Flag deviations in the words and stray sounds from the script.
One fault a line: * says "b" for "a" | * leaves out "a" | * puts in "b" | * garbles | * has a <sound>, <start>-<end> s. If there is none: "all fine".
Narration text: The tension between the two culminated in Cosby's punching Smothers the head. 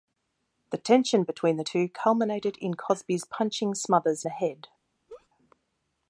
* has a laugh, 5.1-5.3 s